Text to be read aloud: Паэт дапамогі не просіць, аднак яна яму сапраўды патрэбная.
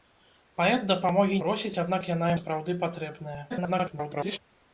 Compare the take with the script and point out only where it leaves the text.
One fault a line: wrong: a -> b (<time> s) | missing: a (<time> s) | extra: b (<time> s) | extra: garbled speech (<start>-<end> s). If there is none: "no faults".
missing: не (1.4 s)
missing: яму (2.3 s)
extra: garbled speech (3.5-4.4 s)